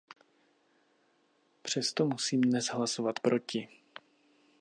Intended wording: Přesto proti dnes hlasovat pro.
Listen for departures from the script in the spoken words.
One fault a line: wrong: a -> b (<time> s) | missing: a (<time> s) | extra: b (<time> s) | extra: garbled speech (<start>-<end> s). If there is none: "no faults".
wrong: proti -> musím (2.0 s)
wrong: pro -> proti (3.2 s)